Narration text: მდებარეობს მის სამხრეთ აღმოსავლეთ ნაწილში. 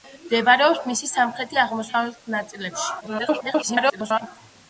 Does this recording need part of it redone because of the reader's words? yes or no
yes